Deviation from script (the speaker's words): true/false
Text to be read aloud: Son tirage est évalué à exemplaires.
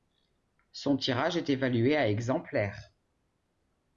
false